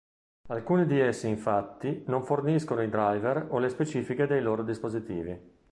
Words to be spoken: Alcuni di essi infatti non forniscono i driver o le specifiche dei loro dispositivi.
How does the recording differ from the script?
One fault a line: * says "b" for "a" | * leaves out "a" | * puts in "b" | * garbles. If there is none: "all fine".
all fine